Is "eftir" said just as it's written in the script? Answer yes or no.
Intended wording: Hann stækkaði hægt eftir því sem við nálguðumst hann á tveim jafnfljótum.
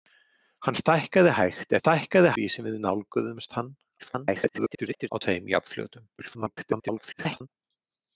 no